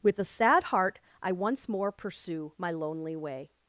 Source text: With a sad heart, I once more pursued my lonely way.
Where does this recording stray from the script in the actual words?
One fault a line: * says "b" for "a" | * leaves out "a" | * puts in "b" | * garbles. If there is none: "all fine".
* says "pursue" for "pursued"